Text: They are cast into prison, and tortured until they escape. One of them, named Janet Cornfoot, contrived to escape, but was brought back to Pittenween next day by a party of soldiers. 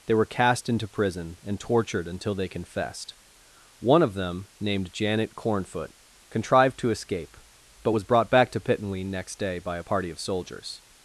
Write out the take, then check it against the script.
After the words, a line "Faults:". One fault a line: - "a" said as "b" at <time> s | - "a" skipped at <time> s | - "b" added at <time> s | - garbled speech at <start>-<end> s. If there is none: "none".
They were cast into prison, and tortured until they confessed. One of them, named Janet Cornfoot, contrived to escape, but was brought back to Pittenween next day by a party of soldiers.
Faults:
- "are" said as "were" at 0.1 s
- "escape" said as "confessed" at 2.5 s